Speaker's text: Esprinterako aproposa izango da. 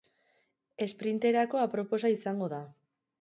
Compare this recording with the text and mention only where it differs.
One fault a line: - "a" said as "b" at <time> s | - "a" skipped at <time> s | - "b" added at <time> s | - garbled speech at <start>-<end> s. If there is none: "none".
none